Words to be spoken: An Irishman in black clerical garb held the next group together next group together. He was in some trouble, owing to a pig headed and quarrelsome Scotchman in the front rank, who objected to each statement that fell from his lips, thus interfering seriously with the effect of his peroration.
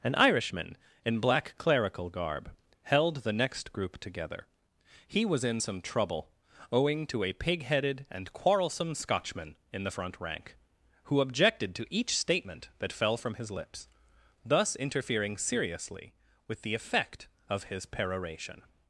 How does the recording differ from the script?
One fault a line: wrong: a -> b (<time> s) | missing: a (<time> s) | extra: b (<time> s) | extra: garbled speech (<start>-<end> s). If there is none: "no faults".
missing: next group together (4.5 s)